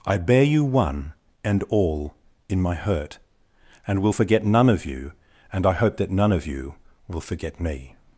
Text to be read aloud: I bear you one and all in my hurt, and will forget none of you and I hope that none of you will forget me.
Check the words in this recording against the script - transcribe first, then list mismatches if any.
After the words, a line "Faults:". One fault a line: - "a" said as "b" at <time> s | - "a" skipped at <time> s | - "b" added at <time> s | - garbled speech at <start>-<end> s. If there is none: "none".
I bear you one and all in my hurt, and will forget none of you and I hope that none of you will forget me.
Faults:
none